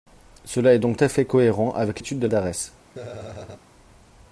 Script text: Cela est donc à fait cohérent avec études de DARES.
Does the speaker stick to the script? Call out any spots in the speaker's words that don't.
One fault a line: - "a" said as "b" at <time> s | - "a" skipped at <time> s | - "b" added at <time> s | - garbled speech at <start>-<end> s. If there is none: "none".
none